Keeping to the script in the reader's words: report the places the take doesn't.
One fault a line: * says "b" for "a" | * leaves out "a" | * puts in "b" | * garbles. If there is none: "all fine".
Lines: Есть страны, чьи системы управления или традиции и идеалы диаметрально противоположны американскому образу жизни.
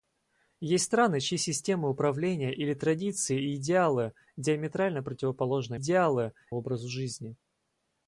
* says "идеалы" for "американскому"